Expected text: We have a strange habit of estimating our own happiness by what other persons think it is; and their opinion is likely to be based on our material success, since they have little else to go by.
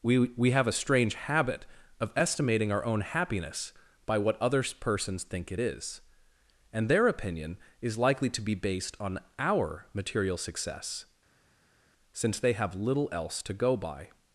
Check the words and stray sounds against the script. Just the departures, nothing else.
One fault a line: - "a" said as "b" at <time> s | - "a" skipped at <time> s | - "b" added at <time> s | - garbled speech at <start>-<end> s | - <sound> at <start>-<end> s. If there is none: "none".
- "we" added at 0.2 s